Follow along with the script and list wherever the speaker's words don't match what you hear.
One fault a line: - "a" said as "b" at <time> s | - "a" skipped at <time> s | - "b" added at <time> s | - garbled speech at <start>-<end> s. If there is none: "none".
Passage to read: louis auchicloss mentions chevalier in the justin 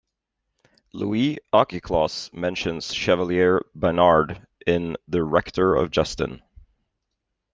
- "baynard" added at 3.7 s
- "rector of" added at 5.2 s